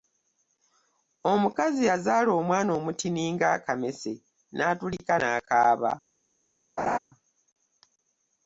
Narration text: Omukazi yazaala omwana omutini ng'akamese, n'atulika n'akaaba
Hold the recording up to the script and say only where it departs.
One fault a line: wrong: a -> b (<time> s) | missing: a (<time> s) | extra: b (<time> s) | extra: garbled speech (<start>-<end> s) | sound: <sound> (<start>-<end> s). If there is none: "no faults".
sound: laugh (6.8-7.0 s)